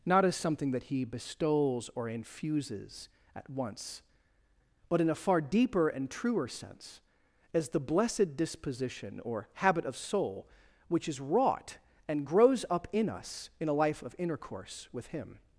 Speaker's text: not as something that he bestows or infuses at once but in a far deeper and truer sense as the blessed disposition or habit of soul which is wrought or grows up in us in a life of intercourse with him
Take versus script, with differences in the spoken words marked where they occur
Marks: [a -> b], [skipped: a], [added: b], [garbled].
not as something that he bestows or infuses at once but in a far deeper and truer sense as the blessed disposition or habit of soul which is wrought [or -> and] grows up in us in a life of intercourse with him